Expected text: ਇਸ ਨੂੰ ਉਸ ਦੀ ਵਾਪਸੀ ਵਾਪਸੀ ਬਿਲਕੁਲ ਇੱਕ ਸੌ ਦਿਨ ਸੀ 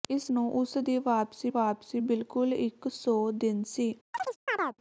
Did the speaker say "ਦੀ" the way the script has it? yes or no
yes